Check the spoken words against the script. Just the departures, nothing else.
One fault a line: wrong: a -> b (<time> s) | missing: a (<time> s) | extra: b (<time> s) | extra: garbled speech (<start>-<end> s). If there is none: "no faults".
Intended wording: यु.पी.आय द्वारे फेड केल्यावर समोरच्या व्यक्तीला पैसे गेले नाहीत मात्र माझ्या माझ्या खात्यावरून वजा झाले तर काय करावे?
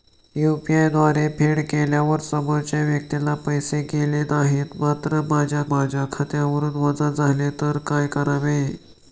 no faults